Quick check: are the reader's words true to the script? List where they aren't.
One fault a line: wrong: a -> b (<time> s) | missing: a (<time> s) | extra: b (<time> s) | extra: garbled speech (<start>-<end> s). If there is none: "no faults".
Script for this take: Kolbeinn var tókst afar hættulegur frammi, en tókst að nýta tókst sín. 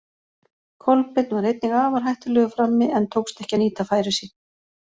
wrong: tókst -> einnig (1.5 s)
extra: ekki (3.5 s)
wrong: tókst -> færi (4.0 s)